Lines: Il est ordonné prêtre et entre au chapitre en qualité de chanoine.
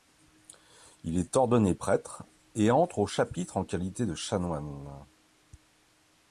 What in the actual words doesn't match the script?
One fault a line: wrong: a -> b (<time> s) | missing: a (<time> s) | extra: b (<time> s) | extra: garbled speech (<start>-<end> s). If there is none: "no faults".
no faults